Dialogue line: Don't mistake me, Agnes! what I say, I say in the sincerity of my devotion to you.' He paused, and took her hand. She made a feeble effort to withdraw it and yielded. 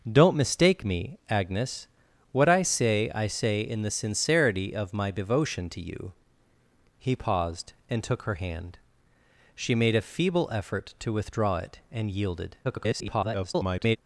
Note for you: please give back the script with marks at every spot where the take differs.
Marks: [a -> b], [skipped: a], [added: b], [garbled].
Don't mistake me, Agnes! what I say, I say in the sincerity of my devotion to you.' He paused, and took her hand. She made a feeble effort to withdraw it and yielded. [garbled]